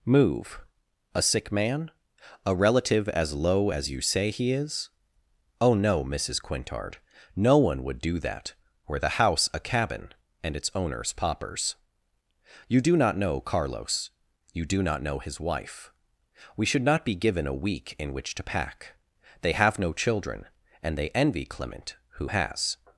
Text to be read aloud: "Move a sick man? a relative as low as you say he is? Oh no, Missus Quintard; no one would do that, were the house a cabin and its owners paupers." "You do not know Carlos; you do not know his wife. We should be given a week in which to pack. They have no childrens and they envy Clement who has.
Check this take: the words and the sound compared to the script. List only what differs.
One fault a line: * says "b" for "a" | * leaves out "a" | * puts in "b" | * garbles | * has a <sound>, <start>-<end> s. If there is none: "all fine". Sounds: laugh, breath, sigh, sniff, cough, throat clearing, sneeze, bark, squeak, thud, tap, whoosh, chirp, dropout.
* puts in "not"
* says "children" for "childrens"